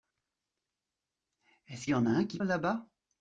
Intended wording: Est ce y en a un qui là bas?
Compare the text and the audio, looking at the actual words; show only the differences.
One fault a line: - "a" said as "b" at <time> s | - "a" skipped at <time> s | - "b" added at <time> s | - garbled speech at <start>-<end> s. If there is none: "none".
none